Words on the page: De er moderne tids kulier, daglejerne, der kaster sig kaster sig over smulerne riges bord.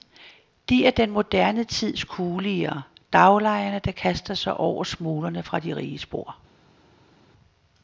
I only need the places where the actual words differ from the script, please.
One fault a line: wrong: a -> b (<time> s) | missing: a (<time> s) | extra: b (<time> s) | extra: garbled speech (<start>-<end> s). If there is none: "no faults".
extra: den (0.9 s)
wrong: kaster sig over smulerne -> over smulerne fra de (4.6 s)